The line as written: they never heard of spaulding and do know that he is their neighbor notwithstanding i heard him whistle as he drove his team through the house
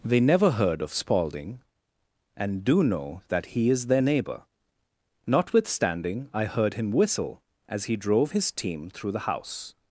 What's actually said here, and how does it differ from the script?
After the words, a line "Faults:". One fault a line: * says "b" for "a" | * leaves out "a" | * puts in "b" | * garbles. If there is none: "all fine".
they never heard of spaulding and do know that he is their neighbor notwithstanding i heard him whistle as he drove his team through the house
Faults:
all fine